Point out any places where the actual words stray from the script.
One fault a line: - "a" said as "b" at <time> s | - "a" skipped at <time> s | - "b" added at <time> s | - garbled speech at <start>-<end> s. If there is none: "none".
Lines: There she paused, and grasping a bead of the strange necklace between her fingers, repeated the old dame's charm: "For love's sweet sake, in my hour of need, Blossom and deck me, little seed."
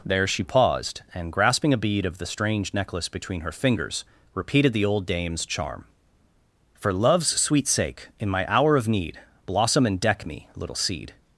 none